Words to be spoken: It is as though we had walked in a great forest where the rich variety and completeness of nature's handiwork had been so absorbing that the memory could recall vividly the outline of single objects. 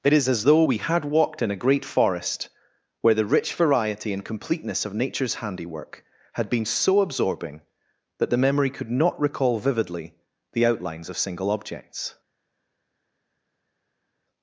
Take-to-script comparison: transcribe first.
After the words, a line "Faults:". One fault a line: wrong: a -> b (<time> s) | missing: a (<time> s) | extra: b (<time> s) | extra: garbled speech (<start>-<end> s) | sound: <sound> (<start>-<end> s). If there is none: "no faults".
It is as though we had walked in a great forest where the rich variety and completeness of nature's handiwork had been so absorbing that the memory could not recall vividly the outlines of single objects.
Faults:
extra: not (8.9 s)
wrong: outline -> outlines (10.7 s)